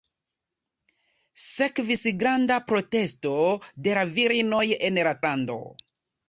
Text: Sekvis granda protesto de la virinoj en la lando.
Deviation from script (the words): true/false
false